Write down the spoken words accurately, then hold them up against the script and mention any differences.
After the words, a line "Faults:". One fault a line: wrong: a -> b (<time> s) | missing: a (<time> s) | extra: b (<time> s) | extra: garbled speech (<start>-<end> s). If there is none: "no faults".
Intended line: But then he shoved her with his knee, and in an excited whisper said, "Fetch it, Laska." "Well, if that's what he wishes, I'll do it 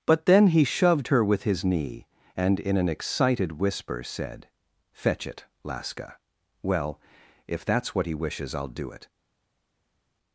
But then he shoved her with his knee, and in an excited whisper said, "Fetch it, Laska." "Well, if that's what he wishes, I'll do it
Faults:
no faults